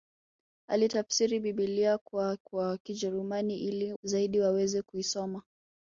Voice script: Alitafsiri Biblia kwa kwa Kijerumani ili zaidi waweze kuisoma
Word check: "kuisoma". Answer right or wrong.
right